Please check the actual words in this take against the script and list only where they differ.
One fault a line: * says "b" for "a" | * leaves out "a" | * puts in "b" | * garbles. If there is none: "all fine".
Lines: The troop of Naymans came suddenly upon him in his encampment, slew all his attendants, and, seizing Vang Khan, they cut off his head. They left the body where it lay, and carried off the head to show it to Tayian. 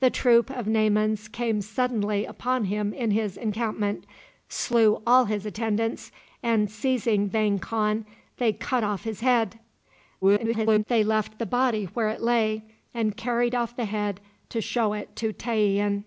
* garbles